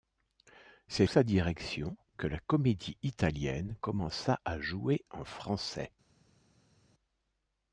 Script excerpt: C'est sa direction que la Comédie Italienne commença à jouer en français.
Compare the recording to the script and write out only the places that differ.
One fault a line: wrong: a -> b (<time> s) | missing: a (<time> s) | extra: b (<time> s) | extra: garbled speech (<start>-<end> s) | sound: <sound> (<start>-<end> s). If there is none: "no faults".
no faults